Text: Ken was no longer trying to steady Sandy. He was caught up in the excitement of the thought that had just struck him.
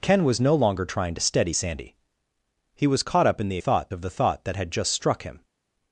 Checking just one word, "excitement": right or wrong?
wrong